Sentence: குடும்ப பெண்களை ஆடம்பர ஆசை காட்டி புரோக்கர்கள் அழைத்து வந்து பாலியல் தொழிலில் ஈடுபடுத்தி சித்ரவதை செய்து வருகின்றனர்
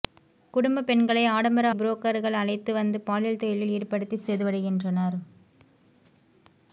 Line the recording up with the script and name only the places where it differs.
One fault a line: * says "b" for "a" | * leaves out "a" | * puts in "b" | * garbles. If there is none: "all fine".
* leaves out "ஆசை காட்டி"
* leaves out "சித்ரவதை"